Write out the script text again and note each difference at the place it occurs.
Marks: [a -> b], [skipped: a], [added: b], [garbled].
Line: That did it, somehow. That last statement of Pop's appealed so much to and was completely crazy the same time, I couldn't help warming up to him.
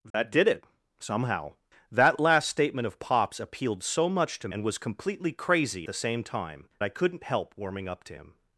That did it, somehow. That last statement of Pop's appealed so much to and was completely crazy the same time, I couldn't help warming up to him.